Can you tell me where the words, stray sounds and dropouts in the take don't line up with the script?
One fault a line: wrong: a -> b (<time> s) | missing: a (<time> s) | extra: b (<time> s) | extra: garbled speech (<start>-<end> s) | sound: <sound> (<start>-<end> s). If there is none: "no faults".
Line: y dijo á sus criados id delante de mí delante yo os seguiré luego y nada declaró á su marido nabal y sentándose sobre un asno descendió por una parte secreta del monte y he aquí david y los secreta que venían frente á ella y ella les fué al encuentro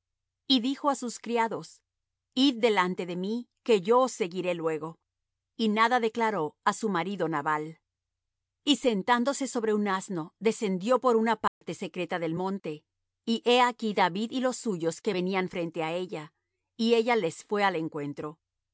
wrong: delante -> que (3.6 s)
sound: dropout (11.5-11.6 s)
wrong: secreta -> suyos (14.6 s)